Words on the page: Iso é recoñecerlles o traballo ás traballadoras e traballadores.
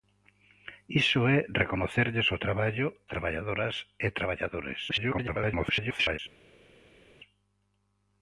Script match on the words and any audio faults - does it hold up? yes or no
no